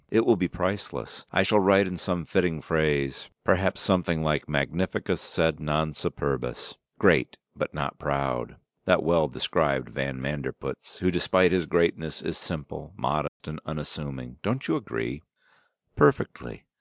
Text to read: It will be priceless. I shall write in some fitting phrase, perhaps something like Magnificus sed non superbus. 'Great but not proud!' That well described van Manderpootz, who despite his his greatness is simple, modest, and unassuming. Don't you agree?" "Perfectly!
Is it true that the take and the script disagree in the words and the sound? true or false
true